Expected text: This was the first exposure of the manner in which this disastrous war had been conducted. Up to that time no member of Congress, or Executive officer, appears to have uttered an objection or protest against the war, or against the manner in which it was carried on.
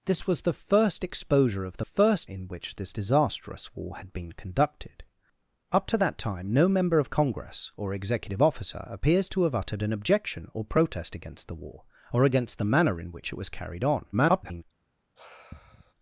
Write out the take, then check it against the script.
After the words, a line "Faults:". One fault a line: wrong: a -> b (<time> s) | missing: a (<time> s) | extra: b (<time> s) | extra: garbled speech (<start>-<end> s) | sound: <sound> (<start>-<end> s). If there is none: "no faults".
This was the first exposure of the first in which this disastrous war had been conducted. Up to that time no member of Congress, or Executive officer, appears to have uttered an objection or protest against the war, or against the manner in which it was carried on. [garbled]
Faults:
wrong: manner -> first (1.8 s)
extra: garbled speech (14.1-14.6 s)
sound: sigh (15.2-15.9 s)